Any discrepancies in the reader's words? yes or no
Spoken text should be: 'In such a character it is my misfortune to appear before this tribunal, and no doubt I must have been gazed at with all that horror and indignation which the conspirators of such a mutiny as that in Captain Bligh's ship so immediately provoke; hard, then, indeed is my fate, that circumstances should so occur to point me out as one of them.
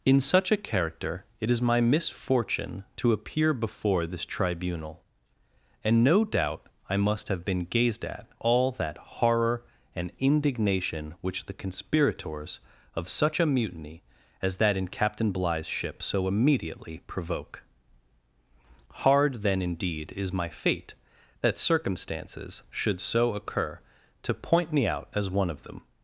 yes